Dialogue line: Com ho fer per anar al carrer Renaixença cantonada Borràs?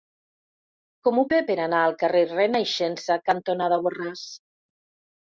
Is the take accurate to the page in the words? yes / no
yes